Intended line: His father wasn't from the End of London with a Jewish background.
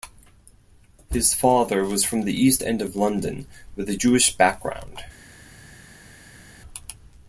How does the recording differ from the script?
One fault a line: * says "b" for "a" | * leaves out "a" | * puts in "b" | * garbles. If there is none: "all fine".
* says "was" for "wasn't"
* puts in "East"